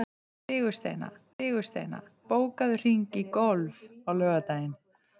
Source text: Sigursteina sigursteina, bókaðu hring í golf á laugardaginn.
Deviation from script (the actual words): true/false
false